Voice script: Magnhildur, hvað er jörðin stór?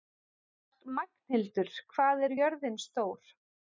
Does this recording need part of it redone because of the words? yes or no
no